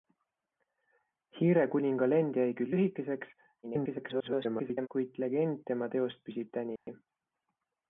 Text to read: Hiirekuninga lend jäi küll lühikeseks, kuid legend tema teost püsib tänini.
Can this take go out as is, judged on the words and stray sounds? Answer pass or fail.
fail